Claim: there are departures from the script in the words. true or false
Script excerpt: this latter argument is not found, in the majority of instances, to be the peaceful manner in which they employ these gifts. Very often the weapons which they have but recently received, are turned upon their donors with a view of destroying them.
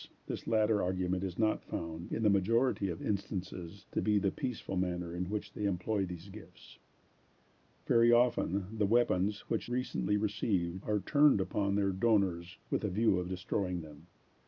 true